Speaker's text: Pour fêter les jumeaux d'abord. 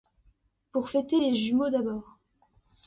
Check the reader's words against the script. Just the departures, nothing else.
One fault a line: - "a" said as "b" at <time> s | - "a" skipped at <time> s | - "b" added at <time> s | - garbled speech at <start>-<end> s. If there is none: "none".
none